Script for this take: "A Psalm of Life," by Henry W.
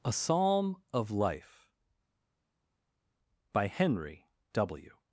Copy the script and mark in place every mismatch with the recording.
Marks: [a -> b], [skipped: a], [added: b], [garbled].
"A Psalm of Life," by Henry W.